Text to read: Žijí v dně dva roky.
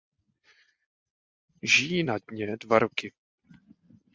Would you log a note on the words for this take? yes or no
yes